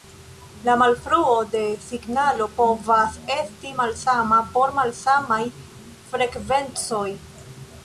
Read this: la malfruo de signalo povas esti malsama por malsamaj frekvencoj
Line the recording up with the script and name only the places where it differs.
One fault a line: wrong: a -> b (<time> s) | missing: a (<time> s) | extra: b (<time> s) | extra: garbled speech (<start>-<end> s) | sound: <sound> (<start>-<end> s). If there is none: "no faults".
no faults